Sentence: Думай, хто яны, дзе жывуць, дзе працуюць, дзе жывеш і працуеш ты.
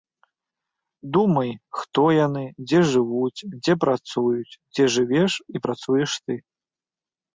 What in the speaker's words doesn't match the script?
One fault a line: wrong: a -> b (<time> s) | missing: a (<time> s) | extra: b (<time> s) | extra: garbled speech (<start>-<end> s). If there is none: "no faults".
no faults